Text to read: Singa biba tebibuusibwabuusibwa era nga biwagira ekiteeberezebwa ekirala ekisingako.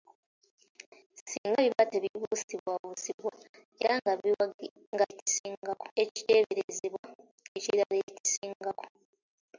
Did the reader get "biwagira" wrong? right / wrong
wrong